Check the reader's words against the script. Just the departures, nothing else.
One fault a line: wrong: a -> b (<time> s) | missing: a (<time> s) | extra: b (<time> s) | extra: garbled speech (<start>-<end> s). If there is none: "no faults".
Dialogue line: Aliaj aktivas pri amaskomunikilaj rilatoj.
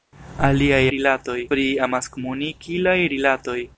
wrong: aktivas -> rilatoj (0.9 s)